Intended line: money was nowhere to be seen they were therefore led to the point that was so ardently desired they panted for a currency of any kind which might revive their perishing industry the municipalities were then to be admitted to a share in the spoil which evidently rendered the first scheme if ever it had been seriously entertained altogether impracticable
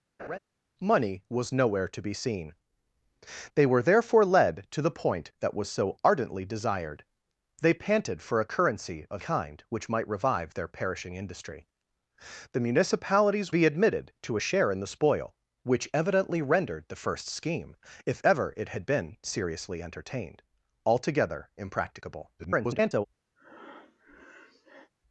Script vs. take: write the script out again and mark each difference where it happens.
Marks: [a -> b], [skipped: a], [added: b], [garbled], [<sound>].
[laugh] money was nowhere to be seen they were therefore led to the point that was so ardently desired they panted for a currency of [skipped: any] kind which might revive their perishing industry the municipalities [skipped: were then to] be admitted to a share in the spoil which evidently rendered the first scheme if ever it had been seriously entertained altogether impracticable [garbled] [breath]